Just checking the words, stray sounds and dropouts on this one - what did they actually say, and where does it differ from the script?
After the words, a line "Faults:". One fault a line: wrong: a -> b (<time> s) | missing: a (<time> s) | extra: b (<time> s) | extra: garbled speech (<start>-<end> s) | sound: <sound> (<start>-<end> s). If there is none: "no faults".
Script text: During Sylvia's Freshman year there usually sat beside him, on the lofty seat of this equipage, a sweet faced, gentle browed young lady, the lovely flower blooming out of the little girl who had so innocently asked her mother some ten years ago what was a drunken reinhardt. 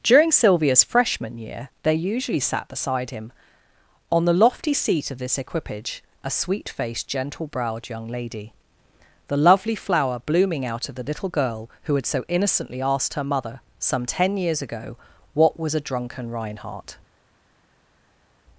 During Sylvia's Freshman year they usually sat beside him, on the lofty seat of this equipage, a sweet faced, gentle browed young lady, the lovely flower blooming out of the little girl who had so innocently asked her mother some ten years ago what was a drunken reinhardt.
Faults:
wrong: there -> they (1.8 s)